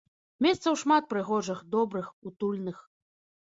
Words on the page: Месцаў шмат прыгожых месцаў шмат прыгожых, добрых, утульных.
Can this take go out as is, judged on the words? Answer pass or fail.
fail